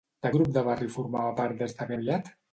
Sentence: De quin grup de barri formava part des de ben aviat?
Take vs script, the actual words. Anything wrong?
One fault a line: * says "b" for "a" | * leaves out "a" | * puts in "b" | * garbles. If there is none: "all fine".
* leaves out "quin"
* leaves out "ben"